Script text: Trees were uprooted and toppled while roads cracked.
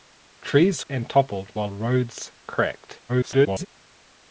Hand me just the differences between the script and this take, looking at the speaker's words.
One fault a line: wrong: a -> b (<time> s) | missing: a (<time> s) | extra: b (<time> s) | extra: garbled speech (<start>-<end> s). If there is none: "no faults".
missing: were uprooted (0.8 s)
extra: garbled speech (3.1-3.7 s)